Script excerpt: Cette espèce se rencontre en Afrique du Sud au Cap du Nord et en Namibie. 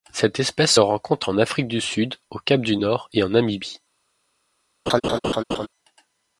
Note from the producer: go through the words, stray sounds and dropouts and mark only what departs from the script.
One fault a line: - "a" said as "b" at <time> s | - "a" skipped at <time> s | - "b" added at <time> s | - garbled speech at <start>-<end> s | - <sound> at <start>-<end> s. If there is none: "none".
- laugh at 4.9-5.7 s